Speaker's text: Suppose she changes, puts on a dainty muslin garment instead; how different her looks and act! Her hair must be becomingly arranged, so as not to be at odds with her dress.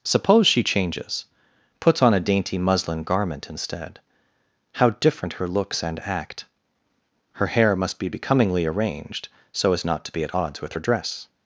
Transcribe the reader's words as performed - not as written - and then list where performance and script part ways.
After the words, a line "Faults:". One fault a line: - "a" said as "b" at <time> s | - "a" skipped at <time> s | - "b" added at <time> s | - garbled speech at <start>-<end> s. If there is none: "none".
Suppose she changes, puts on a dainty muslin garment instead; how different her looks and act! Her hair must be becomingly arranged, so as not to be at odds with her dress.
Faults:
none